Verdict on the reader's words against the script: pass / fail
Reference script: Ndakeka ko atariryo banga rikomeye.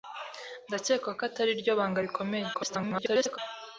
fail